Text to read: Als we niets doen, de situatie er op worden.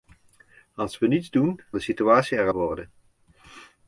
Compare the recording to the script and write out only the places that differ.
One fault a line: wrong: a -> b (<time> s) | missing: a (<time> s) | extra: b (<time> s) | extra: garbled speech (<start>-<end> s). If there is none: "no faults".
no faults